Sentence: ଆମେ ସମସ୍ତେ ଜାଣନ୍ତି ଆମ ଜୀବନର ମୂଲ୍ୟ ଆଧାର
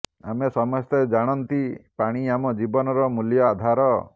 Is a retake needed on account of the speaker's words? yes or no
yes